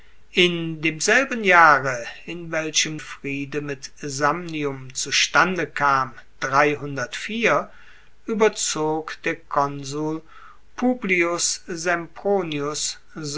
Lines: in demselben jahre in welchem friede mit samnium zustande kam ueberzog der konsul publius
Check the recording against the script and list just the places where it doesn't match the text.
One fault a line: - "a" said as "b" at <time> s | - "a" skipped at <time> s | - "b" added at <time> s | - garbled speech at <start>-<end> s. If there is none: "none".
none